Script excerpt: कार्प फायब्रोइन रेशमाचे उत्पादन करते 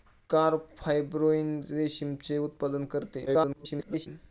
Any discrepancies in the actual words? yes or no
yes